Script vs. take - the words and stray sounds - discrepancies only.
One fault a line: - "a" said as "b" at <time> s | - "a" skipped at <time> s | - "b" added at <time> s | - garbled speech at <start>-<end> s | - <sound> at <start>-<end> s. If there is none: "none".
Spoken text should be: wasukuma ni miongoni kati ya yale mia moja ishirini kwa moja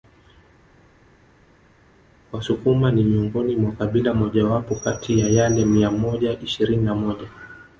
- "mwa kabila mojawapo" added at 3.6 s
- "kwa" said as "na" at 6.8 s